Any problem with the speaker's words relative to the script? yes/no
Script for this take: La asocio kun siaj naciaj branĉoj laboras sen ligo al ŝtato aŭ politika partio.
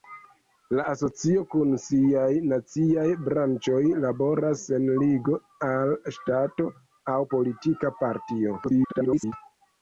yes